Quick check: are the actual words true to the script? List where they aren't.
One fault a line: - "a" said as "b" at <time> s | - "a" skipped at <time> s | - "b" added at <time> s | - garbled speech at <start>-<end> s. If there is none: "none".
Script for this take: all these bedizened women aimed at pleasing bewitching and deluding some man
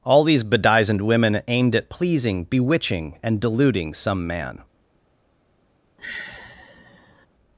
none